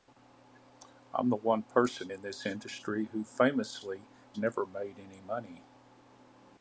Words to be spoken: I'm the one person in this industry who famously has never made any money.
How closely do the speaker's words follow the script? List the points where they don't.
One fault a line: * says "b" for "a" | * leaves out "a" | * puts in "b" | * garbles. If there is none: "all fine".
* leaves out "has"